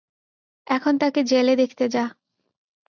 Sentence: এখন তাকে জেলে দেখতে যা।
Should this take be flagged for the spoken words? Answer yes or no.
no